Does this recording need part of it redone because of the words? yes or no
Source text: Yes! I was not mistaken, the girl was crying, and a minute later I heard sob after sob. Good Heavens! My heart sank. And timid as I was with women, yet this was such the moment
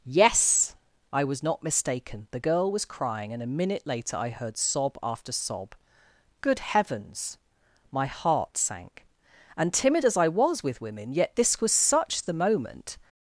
no